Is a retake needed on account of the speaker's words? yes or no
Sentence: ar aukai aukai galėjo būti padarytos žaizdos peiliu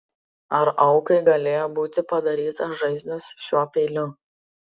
yes